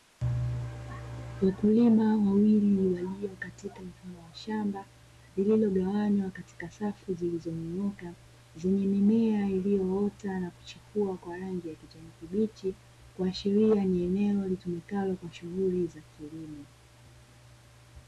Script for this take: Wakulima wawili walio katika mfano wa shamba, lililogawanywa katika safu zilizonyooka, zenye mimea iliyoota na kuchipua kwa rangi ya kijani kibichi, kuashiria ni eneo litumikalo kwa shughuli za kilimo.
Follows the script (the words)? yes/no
yes